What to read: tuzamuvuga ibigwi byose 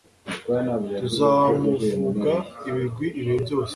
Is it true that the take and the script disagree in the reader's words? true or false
true